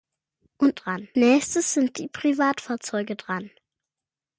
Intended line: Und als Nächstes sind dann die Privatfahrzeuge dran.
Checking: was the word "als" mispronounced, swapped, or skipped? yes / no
yes